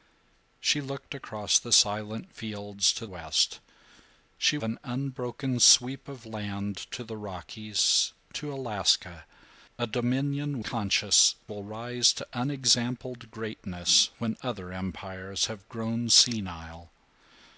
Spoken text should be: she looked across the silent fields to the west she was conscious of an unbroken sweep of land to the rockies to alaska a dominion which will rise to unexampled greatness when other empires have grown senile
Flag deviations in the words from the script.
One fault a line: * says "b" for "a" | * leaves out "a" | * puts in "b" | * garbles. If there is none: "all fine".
* leaves out "the"
* leaves out "was conscious of"
* says "conscious" for "which"